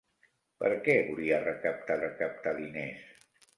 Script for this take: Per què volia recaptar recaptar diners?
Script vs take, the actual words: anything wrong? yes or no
no